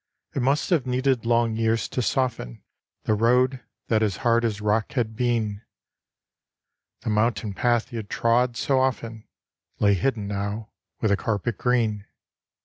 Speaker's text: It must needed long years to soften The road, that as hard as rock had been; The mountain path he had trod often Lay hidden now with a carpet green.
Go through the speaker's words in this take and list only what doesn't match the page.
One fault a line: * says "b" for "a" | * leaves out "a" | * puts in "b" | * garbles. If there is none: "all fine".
* puts in "have"
* puts in "so"